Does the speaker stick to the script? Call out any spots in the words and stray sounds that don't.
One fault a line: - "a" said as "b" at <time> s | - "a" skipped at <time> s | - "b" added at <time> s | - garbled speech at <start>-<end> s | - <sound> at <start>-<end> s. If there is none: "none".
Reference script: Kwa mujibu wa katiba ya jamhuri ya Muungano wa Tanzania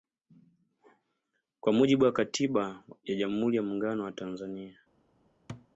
- thud at 5.5-5.7 s